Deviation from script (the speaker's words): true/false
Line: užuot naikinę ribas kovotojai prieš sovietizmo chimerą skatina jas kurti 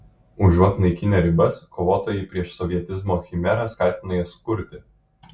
false